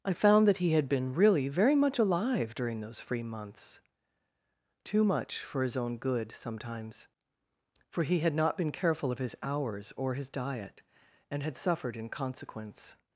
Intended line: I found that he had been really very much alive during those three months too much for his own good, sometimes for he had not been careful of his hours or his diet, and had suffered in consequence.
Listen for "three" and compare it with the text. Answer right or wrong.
wrong